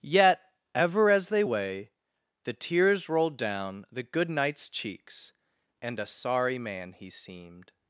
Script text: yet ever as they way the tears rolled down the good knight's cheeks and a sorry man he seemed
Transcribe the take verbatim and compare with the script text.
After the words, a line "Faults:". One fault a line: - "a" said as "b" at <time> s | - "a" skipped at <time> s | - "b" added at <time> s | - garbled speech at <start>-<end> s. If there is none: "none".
yet ever as they way the tears rolled down the good knight's cheeks and a sorry man he seemed
Faults:
none